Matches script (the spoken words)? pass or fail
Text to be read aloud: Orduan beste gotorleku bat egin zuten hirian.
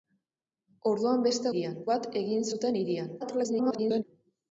fail